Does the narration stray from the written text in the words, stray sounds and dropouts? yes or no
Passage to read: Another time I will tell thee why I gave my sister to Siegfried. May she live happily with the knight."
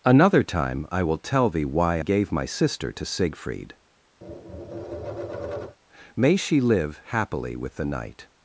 yes